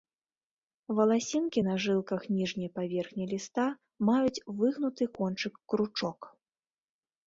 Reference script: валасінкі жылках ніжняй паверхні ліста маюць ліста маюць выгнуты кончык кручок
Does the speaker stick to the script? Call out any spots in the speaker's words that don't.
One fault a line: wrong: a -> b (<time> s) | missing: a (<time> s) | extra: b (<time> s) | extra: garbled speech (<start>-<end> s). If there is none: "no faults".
extra: на (1.6 s)
missing: ліста маюць (4.4 s)